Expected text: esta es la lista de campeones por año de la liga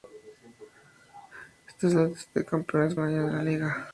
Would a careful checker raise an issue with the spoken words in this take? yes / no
yes